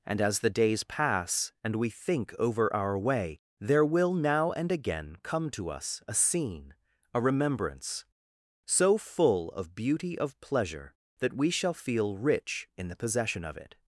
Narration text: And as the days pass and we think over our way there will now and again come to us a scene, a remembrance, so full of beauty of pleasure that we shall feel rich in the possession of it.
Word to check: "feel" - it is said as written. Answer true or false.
true